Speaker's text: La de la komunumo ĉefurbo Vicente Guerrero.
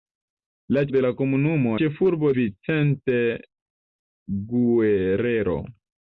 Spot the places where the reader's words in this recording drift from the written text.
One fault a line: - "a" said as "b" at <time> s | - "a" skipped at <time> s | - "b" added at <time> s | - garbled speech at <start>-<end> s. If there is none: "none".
none